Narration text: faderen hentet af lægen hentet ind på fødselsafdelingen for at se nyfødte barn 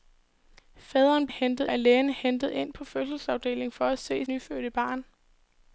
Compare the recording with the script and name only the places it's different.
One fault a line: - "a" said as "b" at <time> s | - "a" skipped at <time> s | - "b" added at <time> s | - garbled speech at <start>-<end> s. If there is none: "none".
none